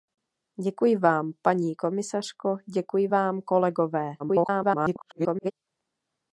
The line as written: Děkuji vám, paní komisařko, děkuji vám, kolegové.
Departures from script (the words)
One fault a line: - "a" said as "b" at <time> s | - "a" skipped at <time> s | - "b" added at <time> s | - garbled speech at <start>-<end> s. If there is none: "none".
- garbled speech at 4.2-5.5 s